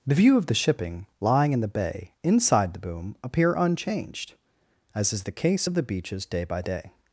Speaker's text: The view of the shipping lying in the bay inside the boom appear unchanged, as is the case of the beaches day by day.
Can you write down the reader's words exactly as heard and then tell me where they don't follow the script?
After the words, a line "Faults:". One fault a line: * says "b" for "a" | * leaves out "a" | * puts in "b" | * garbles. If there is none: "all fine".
The view of the shipping lying in the bay inside the boom appear unchanged, as is the case of the beaches day by day.
Faults:
all fine